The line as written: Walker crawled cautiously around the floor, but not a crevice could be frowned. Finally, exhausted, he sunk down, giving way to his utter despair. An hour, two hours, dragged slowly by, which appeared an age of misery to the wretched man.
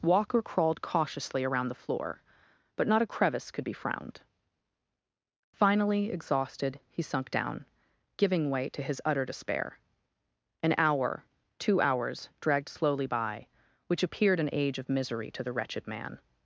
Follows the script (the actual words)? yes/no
yes